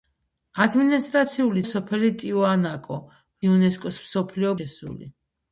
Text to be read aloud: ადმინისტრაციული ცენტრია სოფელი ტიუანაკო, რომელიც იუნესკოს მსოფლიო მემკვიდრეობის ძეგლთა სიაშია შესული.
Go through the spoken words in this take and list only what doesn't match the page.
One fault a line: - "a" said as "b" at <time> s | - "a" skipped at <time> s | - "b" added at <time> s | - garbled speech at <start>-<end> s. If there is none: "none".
- "ცენტრია" skipped at 1.6 s
- "რომელიც" skipped at 3.0 s
- "მემკვიდრეობის ძეგლთა სიაშია" skipped at 4.6 s